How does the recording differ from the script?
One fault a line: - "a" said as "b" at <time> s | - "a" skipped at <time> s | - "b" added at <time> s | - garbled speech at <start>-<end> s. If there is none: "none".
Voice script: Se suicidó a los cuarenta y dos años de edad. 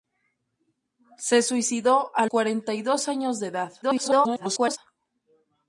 - "los" skipped at 2.2 s
- garbled speech at 3.8-4.8 s